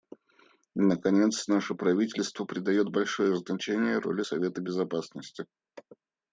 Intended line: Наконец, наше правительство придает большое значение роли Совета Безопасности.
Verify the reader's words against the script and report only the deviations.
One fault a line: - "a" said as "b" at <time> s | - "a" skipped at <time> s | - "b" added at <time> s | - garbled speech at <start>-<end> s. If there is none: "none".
none